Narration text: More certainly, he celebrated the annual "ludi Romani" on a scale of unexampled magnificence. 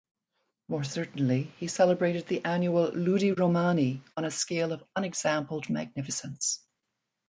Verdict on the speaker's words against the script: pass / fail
pass